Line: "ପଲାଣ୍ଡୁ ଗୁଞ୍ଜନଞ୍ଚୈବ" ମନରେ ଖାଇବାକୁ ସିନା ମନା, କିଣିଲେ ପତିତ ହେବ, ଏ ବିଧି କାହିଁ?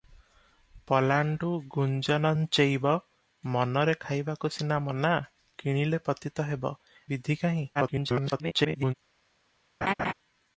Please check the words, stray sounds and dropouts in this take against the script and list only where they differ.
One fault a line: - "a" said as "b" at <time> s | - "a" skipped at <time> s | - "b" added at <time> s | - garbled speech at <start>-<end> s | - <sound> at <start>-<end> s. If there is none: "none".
- "ଏ" skipped at 6.7 s
- garbled speech at 7.7-8.9 s
- laugh at 9.8-10.1 s